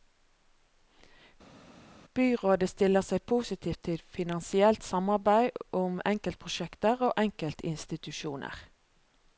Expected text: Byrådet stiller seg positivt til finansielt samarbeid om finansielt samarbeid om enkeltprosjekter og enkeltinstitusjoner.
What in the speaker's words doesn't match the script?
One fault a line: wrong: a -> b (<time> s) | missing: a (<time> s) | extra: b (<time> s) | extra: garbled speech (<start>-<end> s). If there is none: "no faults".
missing: finansielt samarbeid om (6.0 s)